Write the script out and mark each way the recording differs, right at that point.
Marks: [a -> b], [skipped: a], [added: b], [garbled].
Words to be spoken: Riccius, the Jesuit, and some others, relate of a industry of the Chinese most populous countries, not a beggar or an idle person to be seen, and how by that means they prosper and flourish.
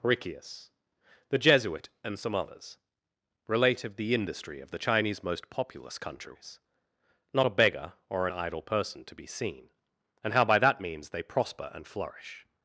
Riccius, the Jesuit, and some others, relate of [a -> the] industry of the Chinese most populous countries, not a beggar or an idle person to be seen, and how by that means they prosper and flourish.